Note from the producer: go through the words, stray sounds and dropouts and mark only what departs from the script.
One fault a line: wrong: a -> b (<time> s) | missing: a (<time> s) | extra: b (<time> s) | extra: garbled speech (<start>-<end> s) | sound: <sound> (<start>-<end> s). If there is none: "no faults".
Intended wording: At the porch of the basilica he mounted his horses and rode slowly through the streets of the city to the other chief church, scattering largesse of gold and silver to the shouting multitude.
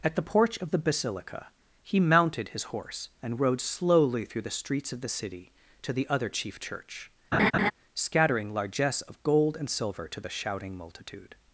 wrong: horses -> horse (2.6 s)
sound: laugh (7.3-7.7 s)